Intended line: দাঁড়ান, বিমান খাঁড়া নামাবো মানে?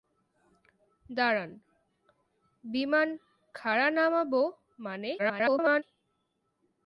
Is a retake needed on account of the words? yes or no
yes